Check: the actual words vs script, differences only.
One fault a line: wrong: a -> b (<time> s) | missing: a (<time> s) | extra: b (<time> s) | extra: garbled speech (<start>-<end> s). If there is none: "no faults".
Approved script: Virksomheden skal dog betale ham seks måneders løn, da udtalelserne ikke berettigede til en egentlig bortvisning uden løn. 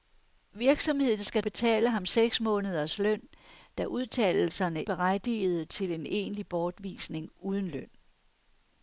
missing: dog (1.4 s)
missing: ikke (4.8 s)